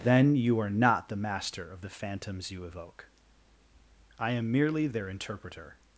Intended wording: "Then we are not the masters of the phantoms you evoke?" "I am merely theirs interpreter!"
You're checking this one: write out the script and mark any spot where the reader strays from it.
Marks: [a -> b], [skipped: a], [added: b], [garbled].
"Then [we -> you] are not the [masters -> master] of the phantoms you evoke?" "I am merely [theirs -> their] interpreter!"